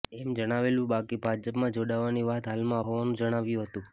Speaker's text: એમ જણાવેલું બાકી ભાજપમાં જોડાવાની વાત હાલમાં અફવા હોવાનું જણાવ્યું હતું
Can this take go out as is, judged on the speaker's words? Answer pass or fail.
fail